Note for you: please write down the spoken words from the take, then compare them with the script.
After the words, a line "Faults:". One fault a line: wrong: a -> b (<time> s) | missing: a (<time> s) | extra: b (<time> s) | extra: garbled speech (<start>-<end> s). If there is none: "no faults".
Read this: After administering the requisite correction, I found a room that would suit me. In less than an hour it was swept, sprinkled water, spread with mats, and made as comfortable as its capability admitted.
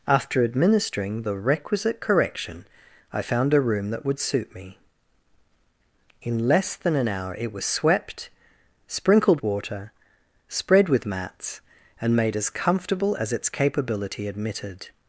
After administering the requisite correction, I found a room that would suit me. In less than an hour it was swept, sprinkled water, spread with mats, and made as comfortable as its capability admitted.
Faults:
no faults